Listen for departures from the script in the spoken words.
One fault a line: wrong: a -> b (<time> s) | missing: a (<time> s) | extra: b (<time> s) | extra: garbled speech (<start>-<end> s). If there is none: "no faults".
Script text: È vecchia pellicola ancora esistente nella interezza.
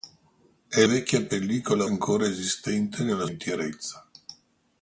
no faults